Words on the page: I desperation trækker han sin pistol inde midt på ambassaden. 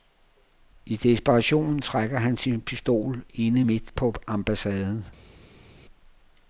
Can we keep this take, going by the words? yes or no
yes